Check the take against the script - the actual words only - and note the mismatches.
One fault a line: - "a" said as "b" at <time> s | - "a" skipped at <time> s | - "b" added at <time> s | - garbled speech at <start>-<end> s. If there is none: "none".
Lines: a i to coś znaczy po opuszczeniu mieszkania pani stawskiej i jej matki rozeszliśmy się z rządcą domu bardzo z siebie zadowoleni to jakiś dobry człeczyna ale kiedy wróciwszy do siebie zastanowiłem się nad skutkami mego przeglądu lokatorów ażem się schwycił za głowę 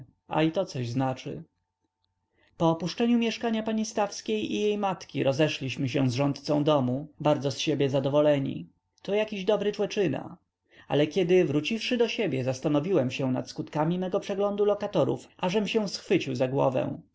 none